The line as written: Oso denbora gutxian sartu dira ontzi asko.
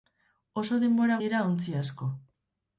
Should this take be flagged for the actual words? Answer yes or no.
yes